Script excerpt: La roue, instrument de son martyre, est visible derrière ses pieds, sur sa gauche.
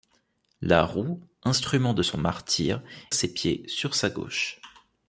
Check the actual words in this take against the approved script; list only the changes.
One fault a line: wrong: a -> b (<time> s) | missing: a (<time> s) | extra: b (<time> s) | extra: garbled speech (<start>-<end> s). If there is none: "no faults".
missing: est visible derrière (2.8 s)